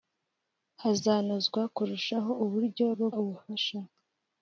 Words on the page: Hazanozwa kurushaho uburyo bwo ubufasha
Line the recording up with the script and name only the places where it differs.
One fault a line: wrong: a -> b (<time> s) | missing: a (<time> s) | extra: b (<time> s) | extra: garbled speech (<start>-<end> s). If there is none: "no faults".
no faults